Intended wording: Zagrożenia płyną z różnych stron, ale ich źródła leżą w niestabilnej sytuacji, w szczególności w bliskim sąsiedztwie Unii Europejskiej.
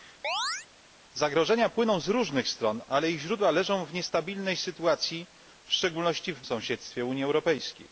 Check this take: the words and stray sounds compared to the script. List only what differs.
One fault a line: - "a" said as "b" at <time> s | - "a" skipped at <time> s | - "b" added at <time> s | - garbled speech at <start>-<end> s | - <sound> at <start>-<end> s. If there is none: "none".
- chirp at 0.2-0.7 s
- "bliskim" skipped at 6.4 s